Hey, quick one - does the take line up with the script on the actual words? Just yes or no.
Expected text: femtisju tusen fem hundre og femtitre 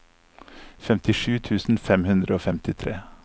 yes